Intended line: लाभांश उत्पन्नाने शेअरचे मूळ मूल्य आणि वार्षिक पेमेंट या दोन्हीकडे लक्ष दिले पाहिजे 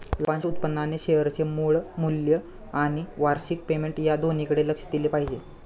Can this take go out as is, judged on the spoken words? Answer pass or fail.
pass